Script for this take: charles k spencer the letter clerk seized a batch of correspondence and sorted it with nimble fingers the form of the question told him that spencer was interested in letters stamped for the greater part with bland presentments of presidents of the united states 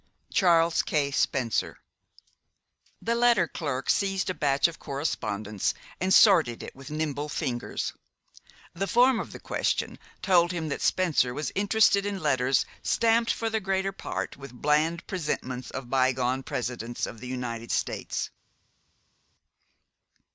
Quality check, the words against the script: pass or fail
fail